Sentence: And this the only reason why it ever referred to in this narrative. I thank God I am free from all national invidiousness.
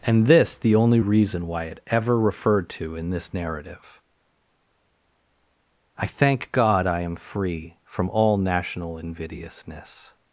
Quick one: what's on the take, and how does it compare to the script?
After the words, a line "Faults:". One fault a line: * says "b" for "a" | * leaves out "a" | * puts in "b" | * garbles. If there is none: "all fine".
And this the only reason why it ever referred to in this narrative. I thank God I am free from all national invidiousness.
Faults:
all fine